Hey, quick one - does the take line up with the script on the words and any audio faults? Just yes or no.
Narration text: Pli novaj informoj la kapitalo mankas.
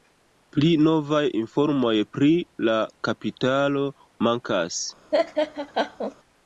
no